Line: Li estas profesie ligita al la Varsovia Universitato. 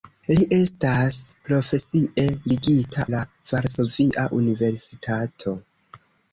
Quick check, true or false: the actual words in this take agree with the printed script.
false